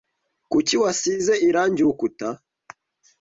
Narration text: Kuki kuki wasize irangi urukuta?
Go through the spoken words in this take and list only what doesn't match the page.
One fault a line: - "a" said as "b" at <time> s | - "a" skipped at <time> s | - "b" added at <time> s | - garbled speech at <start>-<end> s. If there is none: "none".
- "kuki" skipped at 0.8 s